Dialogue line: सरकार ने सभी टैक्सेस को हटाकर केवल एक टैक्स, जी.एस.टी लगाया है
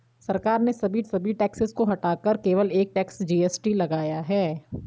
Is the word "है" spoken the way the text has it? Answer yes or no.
yes